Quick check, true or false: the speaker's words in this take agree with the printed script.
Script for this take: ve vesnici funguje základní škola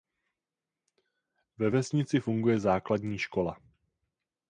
true